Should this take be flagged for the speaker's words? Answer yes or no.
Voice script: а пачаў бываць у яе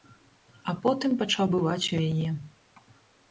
yes